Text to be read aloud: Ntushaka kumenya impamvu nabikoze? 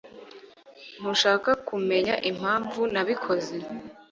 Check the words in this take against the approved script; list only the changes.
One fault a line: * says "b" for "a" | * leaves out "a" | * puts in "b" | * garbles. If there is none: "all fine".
all fine